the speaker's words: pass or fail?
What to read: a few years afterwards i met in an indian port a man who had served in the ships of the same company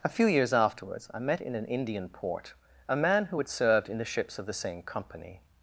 pass